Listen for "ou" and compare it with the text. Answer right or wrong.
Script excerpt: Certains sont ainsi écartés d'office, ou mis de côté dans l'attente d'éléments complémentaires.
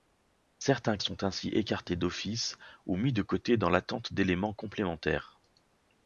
right